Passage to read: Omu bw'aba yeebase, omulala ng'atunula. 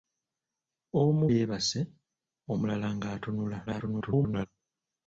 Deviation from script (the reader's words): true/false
true